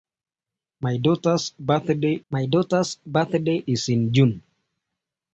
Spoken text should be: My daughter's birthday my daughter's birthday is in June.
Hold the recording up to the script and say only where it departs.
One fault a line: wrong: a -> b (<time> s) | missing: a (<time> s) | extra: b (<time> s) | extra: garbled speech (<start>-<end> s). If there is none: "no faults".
no faults